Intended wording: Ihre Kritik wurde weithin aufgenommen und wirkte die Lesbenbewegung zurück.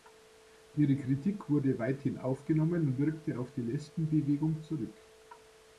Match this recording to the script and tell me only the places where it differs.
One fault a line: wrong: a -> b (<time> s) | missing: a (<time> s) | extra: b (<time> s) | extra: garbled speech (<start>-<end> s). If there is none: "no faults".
extra: auf (3.4 s)